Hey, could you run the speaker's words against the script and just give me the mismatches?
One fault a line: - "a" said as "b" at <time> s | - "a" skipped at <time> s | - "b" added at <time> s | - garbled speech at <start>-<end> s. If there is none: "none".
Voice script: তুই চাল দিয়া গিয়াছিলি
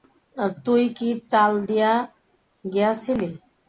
- "কি" added at 1.0 s